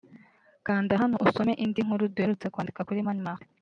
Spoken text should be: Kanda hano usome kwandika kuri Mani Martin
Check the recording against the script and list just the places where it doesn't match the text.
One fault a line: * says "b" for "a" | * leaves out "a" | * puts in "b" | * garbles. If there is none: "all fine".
* puts in "indi nkuru duherutse"